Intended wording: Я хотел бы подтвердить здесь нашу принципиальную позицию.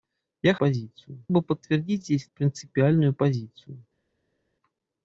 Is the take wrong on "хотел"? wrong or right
wrong